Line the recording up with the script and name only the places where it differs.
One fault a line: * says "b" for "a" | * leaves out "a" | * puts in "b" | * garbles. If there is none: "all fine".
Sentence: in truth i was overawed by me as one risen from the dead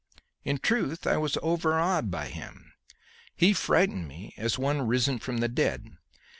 * puts in "him he frightened"